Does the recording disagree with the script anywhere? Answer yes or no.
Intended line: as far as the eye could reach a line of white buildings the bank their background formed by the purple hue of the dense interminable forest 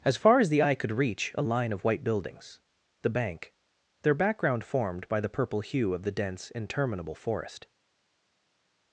no